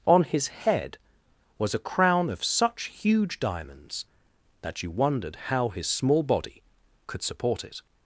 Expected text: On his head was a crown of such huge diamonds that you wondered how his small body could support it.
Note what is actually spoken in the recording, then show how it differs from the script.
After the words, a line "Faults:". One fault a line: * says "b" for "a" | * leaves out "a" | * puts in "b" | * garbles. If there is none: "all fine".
On his head was a crown of such huge diamonds that you wondered how his small body could support it.
Faults:
all fine